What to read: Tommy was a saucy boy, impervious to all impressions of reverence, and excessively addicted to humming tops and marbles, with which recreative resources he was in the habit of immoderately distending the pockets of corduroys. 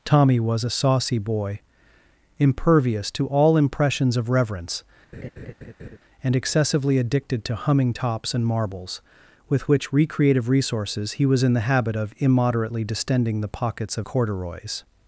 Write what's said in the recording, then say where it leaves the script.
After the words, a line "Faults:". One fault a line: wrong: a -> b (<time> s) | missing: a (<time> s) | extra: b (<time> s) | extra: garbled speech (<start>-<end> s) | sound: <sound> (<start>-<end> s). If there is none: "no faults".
Tommy was a saucy boy, impervious to all impressions of reverence, and excessively addicted to humming tops and marbles, with which recreative resources he was in the habit of immoderately distending the pockets of corduroys.
Faults:
sound: laugh (5.1-6.0 s)